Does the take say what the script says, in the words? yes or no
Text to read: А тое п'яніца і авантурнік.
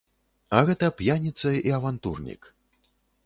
no